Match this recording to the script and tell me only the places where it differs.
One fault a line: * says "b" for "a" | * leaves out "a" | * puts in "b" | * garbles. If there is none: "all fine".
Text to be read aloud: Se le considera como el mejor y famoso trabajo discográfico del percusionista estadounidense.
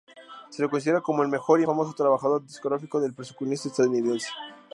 all fine